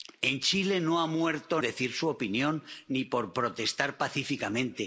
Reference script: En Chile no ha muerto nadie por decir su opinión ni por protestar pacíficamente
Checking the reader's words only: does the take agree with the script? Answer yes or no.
no